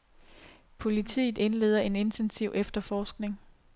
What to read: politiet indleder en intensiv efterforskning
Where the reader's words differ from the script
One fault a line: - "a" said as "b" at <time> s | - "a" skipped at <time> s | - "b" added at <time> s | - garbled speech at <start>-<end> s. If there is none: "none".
none